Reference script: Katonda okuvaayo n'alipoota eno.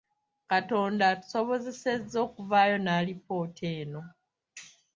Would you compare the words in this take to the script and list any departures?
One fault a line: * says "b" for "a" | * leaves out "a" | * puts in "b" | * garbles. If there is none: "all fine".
* puts in "atusobozesezza"